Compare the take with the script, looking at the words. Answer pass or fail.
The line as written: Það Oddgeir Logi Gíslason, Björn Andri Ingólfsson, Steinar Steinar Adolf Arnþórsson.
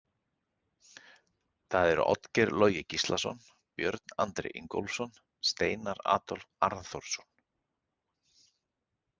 fail